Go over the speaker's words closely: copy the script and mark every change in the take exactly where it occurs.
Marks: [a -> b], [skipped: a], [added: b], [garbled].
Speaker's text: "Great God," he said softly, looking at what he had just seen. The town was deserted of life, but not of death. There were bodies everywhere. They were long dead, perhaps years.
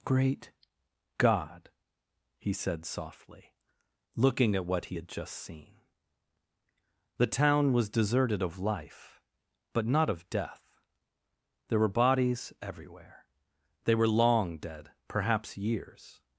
"Great God," he said softly, looking at what he had just seen. The town was deserted of life, but not of death. There were bodies everywhere. They were long dead, perhaps years.